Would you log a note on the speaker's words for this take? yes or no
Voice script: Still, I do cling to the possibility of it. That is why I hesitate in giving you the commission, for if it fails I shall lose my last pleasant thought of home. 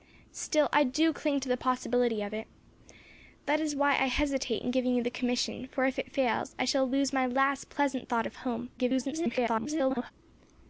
yes